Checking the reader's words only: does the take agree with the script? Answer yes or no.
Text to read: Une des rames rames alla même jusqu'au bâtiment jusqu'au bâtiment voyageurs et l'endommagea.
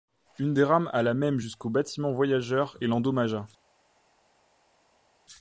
no